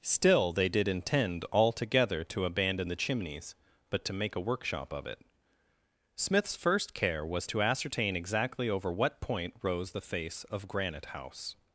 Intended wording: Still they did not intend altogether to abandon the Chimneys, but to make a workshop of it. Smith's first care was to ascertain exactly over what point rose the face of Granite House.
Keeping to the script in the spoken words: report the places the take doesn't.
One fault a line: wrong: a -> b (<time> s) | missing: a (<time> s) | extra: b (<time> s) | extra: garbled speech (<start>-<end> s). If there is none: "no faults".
missing: not (0.9 s)